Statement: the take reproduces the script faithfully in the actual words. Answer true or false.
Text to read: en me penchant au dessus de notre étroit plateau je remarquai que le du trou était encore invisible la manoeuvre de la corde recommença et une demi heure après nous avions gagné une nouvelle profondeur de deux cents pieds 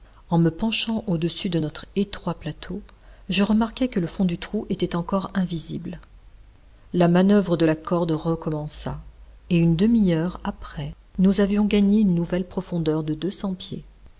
false